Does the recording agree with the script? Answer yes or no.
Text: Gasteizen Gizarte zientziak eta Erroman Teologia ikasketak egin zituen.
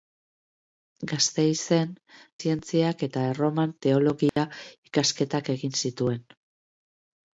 no